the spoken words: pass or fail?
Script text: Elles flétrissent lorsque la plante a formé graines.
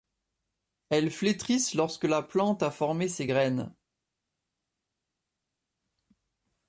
fail